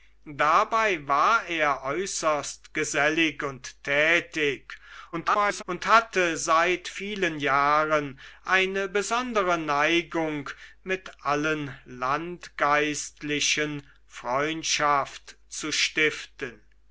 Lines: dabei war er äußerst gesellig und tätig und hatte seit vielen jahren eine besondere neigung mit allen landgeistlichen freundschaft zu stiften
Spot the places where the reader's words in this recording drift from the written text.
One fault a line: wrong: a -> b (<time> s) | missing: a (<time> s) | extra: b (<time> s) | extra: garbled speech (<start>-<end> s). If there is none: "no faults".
extra: garbled speech (5.1-5.6 s)